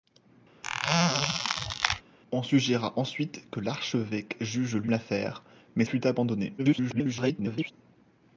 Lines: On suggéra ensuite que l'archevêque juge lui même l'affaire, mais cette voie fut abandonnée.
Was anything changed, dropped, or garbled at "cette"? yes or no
yes